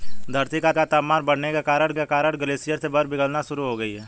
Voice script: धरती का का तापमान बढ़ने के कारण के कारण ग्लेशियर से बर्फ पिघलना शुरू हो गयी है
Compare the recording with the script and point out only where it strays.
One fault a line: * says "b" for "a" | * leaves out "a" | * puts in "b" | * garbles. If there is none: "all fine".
all fine